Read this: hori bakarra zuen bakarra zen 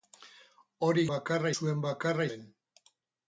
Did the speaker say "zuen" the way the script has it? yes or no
yes